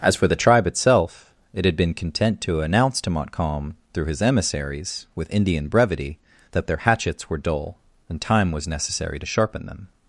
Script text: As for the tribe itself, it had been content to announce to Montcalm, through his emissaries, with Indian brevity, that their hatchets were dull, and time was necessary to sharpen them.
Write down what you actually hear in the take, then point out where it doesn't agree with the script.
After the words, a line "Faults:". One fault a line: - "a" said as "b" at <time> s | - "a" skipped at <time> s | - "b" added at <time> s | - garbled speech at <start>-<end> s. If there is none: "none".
As for the tribe itself, it had been content to announce to Montcalm, through his emissaries, with Indian brevity, that their hatchets were dull, and time was necessary to sharpen them.
Faults:
none